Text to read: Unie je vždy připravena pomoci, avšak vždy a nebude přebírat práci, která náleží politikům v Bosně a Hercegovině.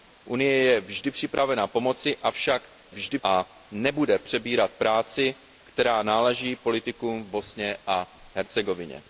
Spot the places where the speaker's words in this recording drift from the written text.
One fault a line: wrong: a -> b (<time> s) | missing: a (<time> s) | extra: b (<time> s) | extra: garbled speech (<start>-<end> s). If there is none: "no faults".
no faults